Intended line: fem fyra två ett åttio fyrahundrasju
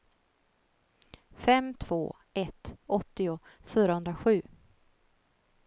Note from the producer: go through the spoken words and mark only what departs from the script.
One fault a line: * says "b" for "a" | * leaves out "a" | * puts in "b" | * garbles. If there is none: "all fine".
* leaves out "fyra"